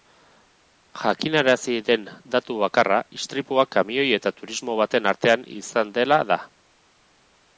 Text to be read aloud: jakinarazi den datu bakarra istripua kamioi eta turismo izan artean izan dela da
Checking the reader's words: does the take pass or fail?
fail